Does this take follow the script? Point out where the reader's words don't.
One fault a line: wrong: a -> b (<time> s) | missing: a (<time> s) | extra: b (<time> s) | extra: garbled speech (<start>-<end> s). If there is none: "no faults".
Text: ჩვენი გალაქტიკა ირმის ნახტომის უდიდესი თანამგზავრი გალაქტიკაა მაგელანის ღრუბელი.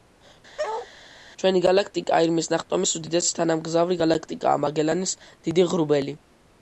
extra: დიდი (5.3 s)